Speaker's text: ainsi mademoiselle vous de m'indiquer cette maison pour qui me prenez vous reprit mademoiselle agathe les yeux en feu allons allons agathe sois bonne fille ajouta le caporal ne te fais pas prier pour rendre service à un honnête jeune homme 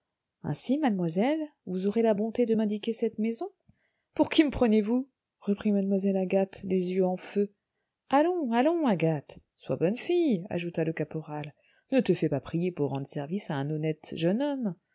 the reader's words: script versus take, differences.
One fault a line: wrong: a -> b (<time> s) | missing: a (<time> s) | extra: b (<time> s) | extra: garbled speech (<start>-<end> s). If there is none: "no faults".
extra: aurez la bonté (1.9 s)